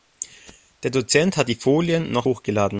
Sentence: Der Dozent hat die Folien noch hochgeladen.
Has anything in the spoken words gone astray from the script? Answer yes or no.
no